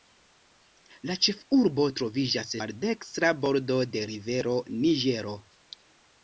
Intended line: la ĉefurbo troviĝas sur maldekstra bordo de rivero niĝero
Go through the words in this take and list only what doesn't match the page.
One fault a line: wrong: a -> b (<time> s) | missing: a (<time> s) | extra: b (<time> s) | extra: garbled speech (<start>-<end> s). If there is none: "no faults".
missing: sur (2.5 s)